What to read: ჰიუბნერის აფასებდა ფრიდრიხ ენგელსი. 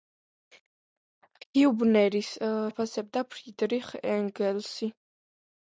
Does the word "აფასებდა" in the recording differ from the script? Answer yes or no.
no